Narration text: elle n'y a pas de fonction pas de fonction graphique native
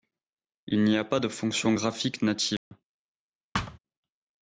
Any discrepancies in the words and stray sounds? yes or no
yes